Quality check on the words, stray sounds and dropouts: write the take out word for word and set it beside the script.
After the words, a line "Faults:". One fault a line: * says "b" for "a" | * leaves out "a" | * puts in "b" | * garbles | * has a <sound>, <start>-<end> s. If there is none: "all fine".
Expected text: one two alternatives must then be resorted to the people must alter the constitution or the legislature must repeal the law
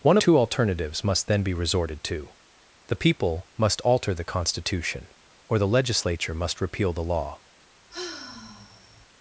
one two alternatives must then be resorted to the people must alter the constitution or the legislature must repeal the law
Faults:
* has a sigh, 7.9-9.1 s